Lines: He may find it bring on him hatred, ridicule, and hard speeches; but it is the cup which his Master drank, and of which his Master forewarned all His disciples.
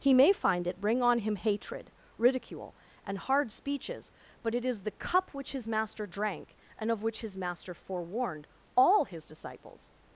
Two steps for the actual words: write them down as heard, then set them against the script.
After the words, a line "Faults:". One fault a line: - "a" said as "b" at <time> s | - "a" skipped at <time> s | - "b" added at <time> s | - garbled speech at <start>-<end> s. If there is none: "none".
He may find it bring on him hatred, ridicule, and hard speeches; but it is the cup which his Master drank, and of which his Master forewarned all His disciples.
Faults:
none